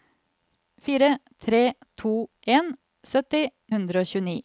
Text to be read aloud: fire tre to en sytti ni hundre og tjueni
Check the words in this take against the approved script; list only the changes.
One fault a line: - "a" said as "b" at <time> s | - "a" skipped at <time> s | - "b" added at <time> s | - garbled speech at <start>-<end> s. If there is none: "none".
- "ni" skipped at 3.4 s